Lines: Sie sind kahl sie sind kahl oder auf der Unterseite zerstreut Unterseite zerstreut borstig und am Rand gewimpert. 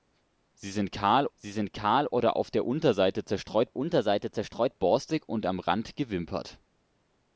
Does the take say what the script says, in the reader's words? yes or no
yes